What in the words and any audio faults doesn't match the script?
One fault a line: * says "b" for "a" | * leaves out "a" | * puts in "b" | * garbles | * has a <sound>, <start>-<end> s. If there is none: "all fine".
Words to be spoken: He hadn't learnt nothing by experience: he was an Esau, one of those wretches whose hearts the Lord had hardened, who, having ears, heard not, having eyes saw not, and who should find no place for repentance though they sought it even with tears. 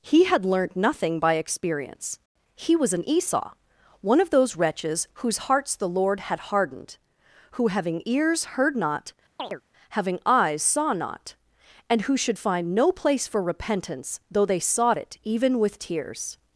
* says "had" for "hadn't"
* has a chirp, 9.4-9.6 s